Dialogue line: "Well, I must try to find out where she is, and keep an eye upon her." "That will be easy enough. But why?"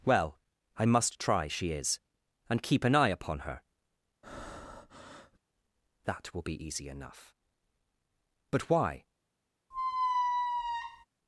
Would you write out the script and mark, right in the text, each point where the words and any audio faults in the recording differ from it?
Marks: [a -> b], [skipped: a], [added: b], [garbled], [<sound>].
"Well, I must try [skipped: to find out where] she is, and keep an eye upon her." [breath] "That will be easy enough. But why?" [squeak]